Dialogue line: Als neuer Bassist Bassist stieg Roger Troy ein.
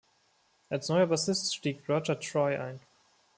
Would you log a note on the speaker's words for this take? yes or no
yes